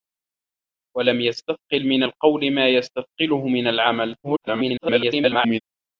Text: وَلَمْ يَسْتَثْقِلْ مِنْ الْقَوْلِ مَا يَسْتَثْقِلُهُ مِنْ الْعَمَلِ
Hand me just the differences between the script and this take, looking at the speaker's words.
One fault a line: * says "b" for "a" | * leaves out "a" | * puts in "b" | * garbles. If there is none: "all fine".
* garbles